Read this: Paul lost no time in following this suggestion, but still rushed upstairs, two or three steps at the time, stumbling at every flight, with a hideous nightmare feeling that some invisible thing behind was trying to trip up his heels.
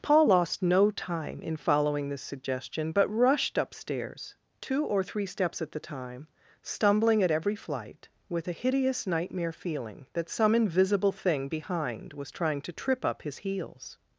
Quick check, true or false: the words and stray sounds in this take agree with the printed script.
false